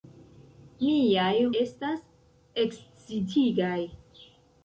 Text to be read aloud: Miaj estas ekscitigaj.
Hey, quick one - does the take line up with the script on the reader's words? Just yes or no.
yes